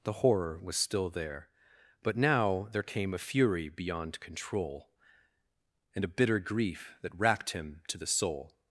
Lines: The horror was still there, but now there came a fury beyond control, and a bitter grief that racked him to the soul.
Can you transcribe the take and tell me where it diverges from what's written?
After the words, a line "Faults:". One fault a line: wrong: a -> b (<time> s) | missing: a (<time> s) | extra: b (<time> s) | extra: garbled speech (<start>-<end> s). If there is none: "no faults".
The horror was still there, but now there came a fury beyond control, and a bitter grief that racked him to the soul.
Faults:
no faults